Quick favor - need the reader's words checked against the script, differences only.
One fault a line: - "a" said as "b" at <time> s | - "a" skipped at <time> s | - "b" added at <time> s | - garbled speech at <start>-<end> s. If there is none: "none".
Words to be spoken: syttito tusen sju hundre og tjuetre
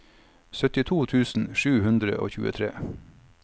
none